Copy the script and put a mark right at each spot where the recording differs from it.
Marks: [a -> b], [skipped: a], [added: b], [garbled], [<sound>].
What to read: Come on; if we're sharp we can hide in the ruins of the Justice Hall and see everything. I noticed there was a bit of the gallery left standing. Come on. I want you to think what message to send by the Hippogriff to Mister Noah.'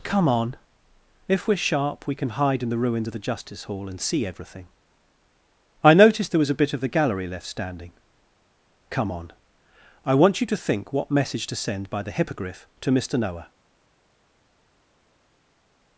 Come on; if we're sharp we can hide in the ruins of the Justice Hall and see everything. I noticed there was a bit of the gallery left standing. Come on. I want you to think what message to send by the Hippogriff to Mister Noah.'